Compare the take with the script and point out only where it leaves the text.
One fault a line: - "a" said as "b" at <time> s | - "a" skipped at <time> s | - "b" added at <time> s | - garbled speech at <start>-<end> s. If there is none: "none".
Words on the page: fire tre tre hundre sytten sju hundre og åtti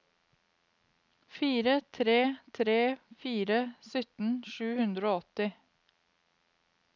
- "hundre" said as "fire" at 3.2 s